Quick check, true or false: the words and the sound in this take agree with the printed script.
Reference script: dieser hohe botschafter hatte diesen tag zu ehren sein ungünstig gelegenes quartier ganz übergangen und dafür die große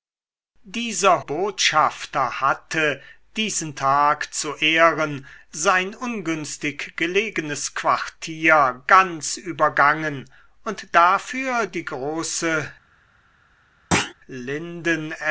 false